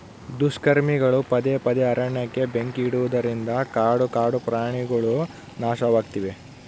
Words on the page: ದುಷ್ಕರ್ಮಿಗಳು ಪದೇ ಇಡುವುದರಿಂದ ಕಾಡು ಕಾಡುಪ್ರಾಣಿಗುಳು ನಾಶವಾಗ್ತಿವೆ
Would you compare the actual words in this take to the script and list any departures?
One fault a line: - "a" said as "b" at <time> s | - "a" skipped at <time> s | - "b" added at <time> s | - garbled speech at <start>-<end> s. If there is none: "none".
- "ಪದೇ ಅರಣ್ಯಕ್ಕೆ ಬೆಂಕಿ" added at 1.6 s